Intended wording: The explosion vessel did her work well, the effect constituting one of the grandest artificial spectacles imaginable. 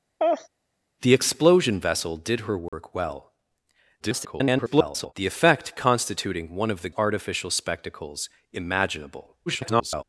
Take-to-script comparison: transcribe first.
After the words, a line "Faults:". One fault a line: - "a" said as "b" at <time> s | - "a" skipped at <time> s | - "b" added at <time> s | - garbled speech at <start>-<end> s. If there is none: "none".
The explosion vessel did her work well, [garbled] the effect constituting one of the artificial spectacles imaginable. [garbled]
Faults:
- garbled speech at 4.0-5.1 s
- "grandest" skipped at 6.9 s
- garbled speech at 9.5-10.0 s